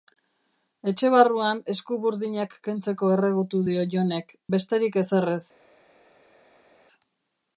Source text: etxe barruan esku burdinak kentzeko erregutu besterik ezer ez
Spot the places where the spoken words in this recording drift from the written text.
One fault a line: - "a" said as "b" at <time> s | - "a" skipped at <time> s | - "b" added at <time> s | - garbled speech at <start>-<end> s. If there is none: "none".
- "dio jonek" added at 3.7 s